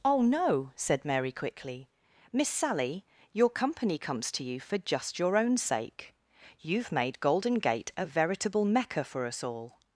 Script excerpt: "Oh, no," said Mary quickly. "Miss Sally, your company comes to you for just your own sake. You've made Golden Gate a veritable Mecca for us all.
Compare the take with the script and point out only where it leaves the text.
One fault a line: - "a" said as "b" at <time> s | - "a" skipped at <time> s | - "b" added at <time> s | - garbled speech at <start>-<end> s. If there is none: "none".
none